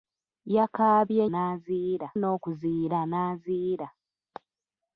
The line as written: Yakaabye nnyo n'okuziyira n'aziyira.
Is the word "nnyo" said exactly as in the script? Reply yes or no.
no